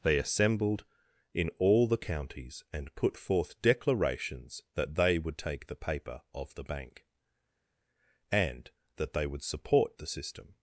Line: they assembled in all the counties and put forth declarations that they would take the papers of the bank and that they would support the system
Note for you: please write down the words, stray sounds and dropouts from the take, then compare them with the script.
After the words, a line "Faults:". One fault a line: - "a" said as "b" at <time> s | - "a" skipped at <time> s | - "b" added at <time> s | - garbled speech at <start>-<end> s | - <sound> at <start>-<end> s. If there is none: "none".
they assembled in all the counties and put forth declarations that they would take the paper of the bank and that they would support the system
Faults:
- "papers" said as "paper" at 5.8 s